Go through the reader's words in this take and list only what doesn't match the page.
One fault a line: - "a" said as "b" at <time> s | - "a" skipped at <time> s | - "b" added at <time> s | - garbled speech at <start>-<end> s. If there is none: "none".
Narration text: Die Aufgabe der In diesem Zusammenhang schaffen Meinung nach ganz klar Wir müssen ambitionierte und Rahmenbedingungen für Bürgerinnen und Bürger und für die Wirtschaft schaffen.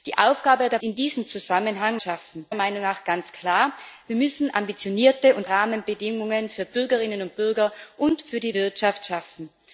none